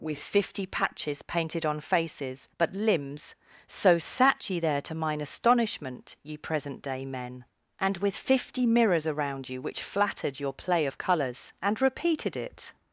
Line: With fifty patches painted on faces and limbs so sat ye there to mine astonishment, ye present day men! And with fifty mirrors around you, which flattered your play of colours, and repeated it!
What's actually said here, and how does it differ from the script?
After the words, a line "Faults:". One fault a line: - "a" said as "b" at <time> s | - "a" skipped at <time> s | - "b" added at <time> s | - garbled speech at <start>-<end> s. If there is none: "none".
With fifty patches painted on faces but limbs so sat ye there to mine astonishment, ye present day men! And with fifty mirrors around you, which flattered your play of colours, and repeated it!
Faults:
- "and" said as "but" at 2.6 s